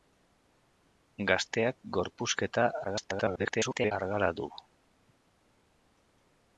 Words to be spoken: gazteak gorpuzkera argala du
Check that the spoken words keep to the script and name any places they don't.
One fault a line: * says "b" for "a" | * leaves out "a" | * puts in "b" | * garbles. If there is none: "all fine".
* garbles